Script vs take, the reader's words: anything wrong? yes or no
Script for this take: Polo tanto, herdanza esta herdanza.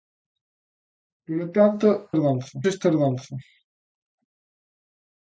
no